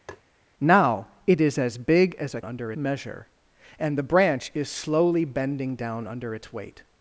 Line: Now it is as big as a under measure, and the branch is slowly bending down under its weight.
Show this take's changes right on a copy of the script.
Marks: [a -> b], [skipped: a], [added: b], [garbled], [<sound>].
[tap] Now it is as big as a under measure, and the branch is slowly bending down under its weight.